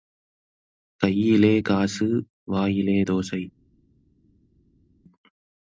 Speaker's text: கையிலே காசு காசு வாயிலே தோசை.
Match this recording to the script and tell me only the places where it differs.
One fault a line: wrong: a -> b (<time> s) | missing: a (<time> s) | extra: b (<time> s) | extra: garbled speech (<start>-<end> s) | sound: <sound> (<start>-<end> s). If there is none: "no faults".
missing: காசு (2.1 s)